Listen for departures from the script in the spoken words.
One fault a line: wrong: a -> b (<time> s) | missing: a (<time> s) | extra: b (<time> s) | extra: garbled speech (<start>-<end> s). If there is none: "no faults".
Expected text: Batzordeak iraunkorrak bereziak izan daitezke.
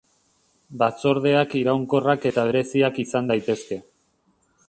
extra: eta (2.3 s)